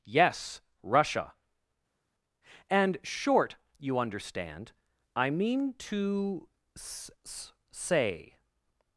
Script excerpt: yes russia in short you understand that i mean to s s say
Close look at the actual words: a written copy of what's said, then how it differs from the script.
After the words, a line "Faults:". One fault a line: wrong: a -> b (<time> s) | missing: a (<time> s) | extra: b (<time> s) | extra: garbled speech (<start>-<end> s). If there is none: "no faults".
yes russia and short you understand i mean to s s say
Faults:
wrong: in -> and (2.7 s)
missing: that (4.7 s)